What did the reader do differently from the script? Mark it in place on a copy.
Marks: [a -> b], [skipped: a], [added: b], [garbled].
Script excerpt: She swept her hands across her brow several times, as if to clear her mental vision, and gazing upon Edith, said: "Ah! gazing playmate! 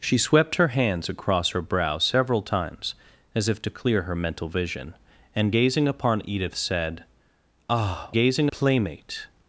She swept her hands across her brow several times, as if to clear her mental vision, and gazing upon Edith, said: "Ah! gazing playmate!